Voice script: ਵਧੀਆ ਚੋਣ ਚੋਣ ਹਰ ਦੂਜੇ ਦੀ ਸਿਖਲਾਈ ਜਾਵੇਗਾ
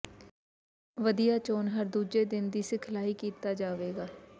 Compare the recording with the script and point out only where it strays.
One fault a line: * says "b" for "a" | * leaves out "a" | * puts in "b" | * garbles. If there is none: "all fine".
* leaves out "ਚੋਣ"
* puts in "ਦਿਨ"
* puts in "ਕੀਤਾ"